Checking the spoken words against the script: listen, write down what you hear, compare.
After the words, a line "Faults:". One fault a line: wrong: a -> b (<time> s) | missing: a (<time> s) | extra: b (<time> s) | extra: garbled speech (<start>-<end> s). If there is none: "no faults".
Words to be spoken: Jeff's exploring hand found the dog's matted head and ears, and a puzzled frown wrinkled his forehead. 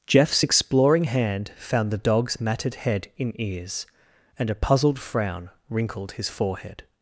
Jeff's exploring hand found the dog's matted head in ears, and a puzzled frown wrinkled his forehead.
Faults:
wrong: and -> in (3.2 s)